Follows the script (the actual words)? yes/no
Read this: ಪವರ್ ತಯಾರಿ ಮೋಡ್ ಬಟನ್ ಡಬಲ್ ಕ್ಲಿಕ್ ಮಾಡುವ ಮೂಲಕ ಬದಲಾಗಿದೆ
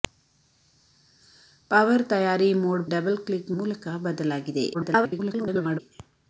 no